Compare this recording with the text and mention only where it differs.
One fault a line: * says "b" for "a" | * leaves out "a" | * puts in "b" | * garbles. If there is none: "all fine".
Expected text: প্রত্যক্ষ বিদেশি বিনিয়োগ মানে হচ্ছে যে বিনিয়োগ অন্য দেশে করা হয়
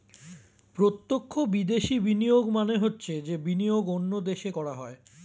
all fine